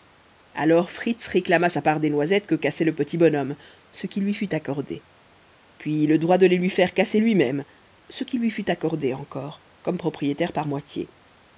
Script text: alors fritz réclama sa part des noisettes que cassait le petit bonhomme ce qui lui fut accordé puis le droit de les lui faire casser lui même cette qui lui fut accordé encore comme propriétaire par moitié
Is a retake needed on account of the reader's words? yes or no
yes